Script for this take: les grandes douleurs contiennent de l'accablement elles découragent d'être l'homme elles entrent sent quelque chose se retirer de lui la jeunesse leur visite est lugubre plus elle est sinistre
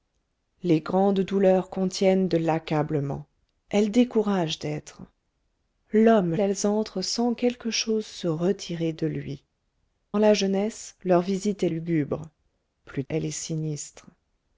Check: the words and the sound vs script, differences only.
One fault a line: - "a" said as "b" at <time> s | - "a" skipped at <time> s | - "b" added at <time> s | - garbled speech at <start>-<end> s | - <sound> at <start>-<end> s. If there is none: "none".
none